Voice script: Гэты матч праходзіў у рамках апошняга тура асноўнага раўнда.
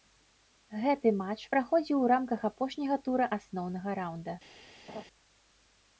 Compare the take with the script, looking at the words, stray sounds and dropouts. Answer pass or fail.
fail